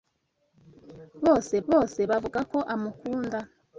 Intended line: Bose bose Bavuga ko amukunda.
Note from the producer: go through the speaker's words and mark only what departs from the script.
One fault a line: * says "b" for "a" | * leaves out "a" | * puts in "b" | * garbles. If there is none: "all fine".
all fine